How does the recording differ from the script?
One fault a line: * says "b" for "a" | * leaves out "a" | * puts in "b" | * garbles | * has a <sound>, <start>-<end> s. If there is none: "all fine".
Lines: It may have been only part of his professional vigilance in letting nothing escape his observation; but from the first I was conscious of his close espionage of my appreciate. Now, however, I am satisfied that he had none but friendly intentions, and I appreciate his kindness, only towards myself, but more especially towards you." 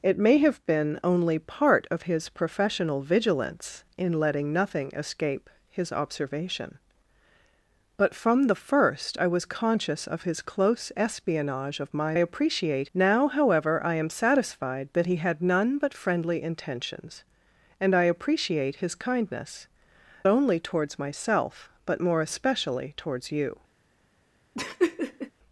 * has a laugh, 24.5-25.3 s